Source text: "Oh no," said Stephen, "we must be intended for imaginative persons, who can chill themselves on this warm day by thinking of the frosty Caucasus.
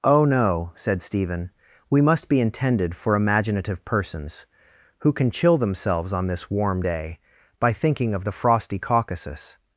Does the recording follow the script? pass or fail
pass